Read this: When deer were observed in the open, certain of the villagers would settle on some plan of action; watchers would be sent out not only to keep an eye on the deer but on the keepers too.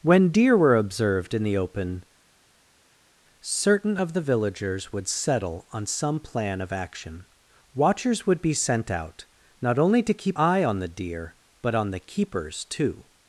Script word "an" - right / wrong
wrong